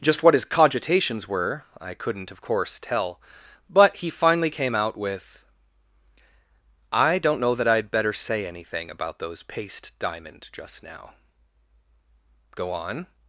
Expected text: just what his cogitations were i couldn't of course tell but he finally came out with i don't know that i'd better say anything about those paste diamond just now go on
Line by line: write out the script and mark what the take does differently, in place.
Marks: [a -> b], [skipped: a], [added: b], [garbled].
just what his cogitations were i couldn't of course tell but he finally came out with i don't know that i'd better say anything about those paste diamond just now go on